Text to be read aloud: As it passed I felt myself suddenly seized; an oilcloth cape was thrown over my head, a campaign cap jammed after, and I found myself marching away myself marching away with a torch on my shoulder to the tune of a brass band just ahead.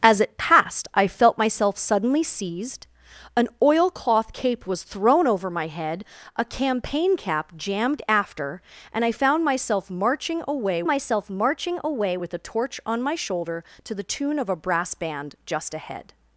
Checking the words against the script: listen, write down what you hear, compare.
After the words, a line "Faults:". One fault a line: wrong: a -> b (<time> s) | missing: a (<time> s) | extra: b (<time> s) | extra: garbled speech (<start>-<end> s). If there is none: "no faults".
As it passed I felt myself suddenly seized; an oilcloth cape was thrown over my head, a campaign cap jammed after, and I found myself marching away myself marching away with a torch on my shoulder to the tune of a brass band just ahead.
Faults:
no faults